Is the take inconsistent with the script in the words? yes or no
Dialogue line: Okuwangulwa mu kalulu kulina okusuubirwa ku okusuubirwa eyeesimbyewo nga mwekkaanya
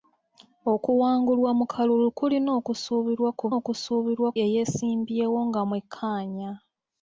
no